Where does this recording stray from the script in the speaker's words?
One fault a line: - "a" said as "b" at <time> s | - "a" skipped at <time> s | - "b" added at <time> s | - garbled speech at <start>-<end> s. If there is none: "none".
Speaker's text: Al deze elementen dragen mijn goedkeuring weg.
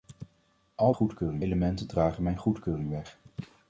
- "deze" said as "goedkeuring" at 0.9 s